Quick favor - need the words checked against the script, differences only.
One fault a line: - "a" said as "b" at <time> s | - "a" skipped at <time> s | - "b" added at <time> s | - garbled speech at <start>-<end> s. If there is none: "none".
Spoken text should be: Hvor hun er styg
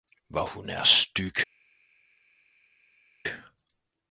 none